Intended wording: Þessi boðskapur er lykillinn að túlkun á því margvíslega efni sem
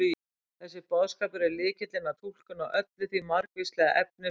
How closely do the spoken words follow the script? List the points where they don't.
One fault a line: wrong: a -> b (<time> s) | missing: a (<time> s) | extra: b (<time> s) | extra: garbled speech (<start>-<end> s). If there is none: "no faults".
extra: öllu (2.8 s)